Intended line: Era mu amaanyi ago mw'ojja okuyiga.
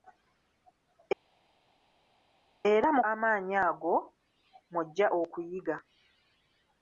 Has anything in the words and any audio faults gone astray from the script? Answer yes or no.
no